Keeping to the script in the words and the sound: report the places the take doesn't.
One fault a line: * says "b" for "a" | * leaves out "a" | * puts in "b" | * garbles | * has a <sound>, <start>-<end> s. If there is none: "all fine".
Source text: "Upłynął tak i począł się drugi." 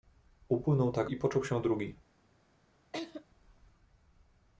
* has a laugh, 2.9-3.2 s